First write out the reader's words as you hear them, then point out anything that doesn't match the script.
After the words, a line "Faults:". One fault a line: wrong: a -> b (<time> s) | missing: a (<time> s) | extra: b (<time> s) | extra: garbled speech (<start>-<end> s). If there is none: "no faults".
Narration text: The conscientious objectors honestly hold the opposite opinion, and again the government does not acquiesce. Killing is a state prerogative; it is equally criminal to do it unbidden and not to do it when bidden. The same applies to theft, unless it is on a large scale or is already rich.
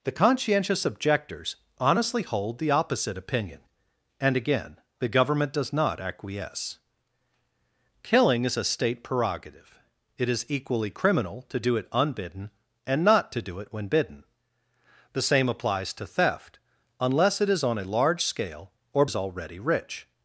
The conscientious objectors honestly hold the opposite opinion, and again the government does not acquiesce. Killing is a state prerogative; it is equally criminal to do it unbidden and not to do it when bidden. The same applies to theft, unless it is on a large scale or is already rich.
Faults:
no faults